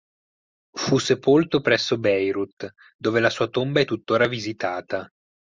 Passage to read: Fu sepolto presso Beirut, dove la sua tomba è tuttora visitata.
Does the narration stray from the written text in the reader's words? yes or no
no